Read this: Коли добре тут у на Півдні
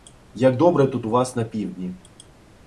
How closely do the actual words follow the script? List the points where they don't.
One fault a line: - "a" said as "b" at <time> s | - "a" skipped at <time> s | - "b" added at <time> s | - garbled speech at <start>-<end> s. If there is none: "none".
- "Коли" said as "Як" at 0.3 s
- "вас" added at 1.1 s